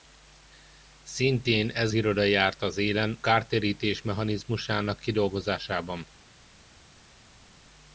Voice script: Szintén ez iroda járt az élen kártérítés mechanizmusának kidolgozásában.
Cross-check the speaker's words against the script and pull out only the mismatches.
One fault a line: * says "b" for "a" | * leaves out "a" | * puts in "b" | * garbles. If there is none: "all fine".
all fine